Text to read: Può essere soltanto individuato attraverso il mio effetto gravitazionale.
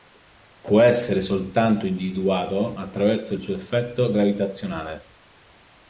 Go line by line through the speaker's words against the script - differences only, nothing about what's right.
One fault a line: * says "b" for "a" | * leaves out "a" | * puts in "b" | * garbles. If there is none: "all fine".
* says "suo" for "mio"